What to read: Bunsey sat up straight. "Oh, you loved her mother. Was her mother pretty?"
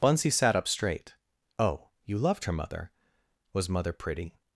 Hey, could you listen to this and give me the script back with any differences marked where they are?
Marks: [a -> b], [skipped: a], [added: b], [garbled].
Bunsey sat up straight. "Oh, you loved her mother. Was [skipped: her] mother pretty?"